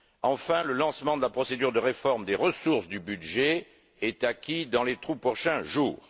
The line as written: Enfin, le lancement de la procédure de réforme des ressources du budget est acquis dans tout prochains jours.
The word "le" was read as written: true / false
true